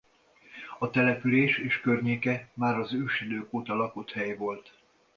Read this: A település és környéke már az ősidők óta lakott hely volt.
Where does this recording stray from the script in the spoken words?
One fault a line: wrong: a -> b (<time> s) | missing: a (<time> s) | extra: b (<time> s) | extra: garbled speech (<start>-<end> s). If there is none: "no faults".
no faults